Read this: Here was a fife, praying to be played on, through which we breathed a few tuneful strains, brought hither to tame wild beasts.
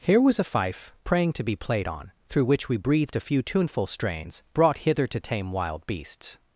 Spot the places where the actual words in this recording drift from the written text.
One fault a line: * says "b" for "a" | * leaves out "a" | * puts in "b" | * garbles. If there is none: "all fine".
all fine